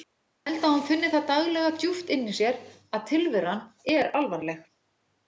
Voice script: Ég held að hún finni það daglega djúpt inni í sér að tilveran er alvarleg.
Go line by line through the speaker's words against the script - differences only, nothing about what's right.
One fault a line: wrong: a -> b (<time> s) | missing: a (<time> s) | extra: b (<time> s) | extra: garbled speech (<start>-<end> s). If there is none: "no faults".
no faults